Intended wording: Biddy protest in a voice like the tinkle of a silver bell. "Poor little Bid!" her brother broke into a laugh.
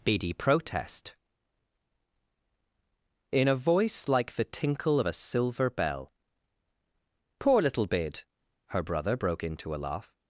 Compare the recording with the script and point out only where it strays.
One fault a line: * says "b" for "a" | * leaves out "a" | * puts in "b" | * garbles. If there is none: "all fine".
all fine